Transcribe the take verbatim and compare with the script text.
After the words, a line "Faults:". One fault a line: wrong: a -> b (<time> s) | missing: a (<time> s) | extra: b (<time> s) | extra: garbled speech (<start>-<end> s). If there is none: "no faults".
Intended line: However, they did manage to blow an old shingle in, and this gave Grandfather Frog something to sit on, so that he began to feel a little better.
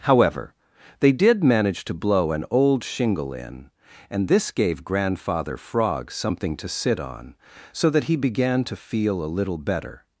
However, they did manage to blow an old shingle in, and this gave Grandfather Frog something to sit on, so that he began to feel a little better.
Faults:
no faults